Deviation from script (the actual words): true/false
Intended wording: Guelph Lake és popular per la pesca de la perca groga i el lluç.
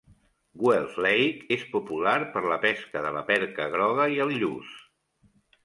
false